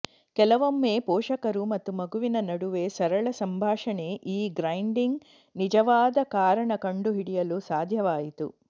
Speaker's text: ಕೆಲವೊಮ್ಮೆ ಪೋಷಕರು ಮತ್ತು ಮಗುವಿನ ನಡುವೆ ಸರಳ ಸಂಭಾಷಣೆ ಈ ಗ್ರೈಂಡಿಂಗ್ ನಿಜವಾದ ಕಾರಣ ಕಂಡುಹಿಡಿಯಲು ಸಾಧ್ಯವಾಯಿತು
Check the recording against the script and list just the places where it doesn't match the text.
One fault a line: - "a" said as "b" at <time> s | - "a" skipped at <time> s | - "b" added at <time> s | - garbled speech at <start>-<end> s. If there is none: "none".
none